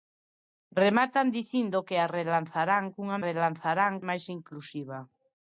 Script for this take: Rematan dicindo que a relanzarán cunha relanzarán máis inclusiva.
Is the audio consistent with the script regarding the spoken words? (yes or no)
yes